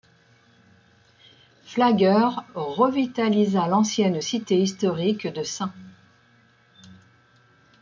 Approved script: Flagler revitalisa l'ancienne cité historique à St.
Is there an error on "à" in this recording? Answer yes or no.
yes